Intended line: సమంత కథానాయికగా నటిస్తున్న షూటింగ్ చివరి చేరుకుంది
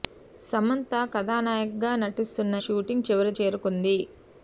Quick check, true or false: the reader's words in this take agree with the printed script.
true